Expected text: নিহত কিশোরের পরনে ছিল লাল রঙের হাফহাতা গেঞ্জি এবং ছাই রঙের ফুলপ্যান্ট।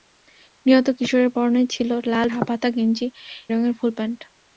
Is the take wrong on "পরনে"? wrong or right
right